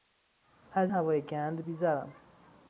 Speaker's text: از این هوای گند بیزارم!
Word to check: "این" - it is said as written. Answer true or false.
false